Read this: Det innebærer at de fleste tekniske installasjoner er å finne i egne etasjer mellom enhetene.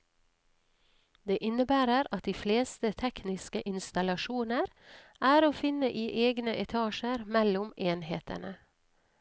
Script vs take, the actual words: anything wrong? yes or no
no